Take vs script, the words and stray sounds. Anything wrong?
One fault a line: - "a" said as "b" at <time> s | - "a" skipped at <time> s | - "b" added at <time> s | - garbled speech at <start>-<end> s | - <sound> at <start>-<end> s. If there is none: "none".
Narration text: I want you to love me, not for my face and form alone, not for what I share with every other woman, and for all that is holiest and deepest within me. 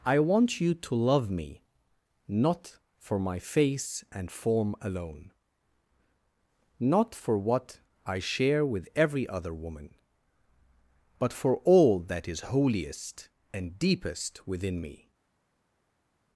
- "and" said as "but" at 11.2 s